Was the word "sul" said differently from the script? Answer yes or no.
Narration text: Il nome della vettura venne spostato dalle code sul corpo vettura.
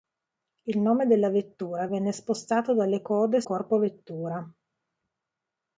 yes